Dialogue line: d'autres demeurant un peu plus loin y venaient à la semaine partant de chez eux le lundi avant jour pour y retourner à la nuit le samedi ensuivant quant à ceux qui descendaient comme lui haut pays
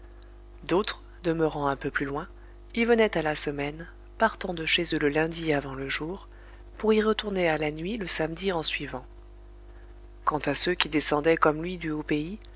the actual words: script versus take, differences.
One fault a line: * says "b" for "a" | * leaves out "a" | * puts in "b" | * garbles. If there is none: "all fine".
* puts in "le"
* puts in "du"